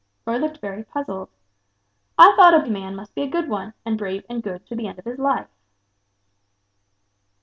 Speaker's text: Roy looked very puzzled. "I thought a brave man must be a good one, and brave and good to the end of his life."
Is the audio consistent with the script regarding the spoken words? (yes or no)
no